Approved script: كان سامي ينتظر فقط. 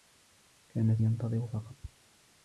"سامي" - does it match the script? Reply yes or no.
no